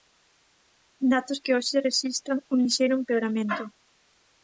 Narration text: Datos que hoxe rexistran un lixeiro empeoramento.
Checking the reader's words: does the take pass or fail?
pass